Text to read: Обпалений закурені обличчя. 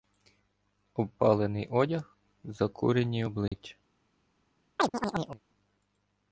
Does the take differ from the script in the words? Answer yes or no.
yes